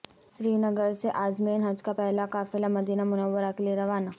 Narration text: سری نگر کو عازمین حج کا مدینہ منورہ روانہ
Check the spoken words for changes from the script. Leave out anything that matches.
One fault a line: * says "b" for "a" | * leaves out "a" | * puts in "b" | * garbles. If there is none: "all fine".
* says "سے" for "کو"
* puts in "پہلا قافلہ"
* puts in "کیلئے"